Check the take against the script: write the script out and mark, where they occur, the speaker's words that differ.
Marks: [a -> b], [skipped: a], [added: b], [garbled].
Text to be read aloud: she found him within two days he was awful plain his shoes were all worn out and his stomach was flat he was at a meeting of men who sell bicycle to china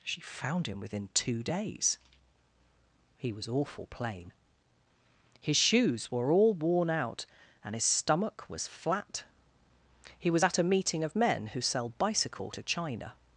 she found him within two days he was awful plain his shoes were all worn out and his stomach was flat he was at a meeting of men who sell bicycle to china